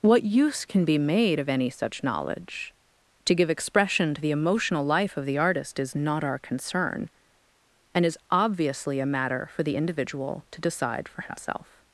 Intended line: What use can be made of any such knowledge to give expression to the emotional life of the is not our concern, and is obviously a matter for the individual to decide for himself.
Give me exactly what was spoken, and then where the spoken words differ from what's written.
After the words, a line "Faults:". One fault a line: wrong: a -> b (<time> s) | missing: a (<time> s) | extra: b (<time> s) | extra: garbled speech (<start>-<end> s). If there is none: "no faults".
What use can be made of any such knowledge to give expression to the emotional life of the artist is not our concern, and is obviously a matter for the individual to decide for himself.
Faults:
extra: artist (5.4 s)